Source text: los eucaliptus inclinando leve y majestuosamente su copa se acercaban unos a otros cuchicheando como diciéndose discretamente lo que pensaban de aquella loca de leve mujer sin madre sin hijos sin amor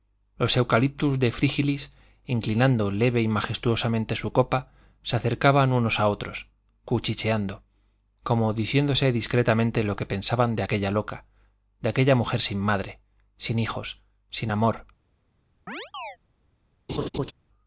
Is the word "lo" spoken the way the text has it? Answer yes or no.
yes